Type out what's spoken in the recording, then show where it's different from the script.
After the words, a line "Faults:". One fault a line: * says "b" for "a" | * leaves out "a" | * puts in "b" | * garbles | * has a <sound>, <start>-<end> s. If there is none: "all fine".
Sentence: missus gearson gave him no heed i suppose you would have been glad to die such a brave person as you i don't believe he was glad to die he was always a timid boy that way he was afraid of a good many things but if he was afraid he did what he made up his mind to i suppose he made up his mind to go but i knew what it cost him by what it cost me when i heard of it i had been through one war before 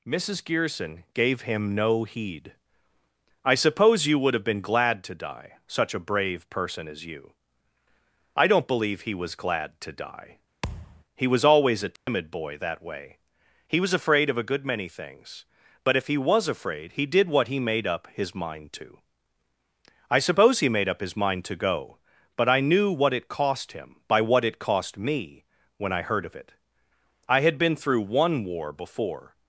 missus gearson gave him no heed i suppose you would have been glad to die such a brave person as you i don't believe he was glad to die he was always a timid boy that way he was afraid of a good many things but if he was afraid he did what he made up his mind to i suppose he made up his mind to go but i knew what it cost him by what it cost me when i heard of it i had been through one war before
Faults:
* has a thud, 10.6-11.0 s
* has a dropout, 12.0-12.1 s